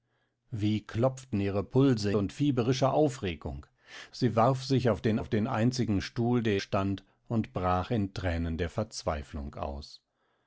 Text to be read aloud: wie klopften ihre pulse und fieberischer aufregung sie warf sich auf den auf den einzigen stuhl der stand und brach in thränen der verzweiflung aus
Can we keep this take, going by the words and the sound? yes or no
yes